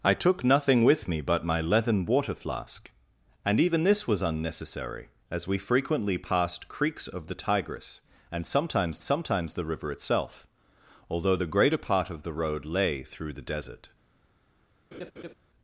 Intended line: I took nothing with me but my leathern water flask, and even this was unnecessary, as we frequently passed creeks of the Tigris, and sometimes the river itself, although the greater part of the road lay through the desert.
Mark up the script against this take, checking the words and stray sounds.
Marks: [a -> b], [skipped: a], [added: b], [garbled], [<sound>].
I took nothing with me but my leathern water flask, and even this was unnecessary, as we frequently passed creeks of the Tigris, and sometimes [added: sometimes] the river itself, although the greater part of the road lay through the desert. [laugh]